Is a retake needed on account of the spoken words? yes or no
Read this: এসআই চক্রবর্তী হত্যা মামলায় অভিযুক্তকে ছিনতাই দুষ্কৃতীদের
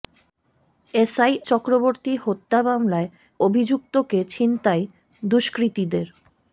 no